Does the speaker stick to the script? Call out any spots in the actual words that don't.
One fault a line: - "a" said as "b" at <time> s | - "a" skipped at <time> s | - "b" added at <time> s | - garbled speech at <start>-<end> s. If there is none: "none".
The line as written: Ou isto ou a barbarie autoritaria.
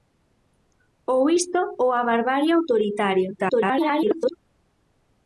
- garbled speech at 3.4-4.4 s